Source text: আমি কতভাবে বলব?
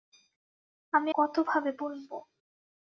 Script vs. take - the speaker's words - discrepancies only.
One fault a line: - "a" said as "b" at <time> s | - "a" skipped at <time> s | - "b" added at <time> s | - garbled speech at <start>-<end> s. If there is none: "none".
none